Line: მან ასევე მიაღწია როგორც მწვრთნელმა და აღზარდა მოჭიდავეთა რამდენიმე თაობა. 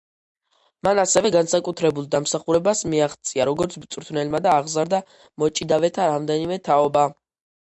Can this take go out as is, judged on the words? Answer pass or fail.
fail